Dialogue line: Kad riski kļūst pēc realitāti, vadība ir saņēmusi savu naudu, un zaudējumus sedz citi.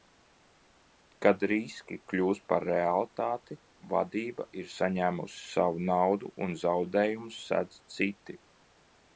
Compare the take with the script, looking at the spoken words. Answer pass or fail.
fail